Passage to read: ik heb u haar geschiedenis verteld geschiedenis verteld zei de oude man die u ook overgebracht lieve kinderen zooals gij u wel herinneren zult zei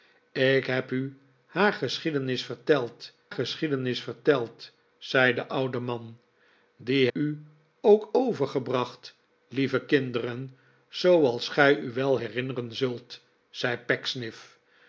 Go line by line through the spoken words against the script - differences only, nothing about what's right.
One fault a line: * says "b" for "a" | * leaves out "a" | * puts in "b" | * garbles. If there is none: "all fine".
all fine